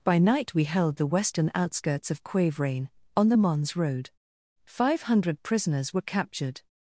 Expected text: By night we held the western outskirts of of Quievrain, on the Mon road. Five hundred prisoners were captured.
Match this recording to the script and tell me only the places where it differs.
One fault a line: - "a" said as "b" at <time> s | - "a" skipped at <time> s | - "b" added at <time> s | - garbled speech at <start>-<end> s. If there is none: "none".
- "of" skipped at 2.2 s
- "Mon" said as "Mons" at 3.3 s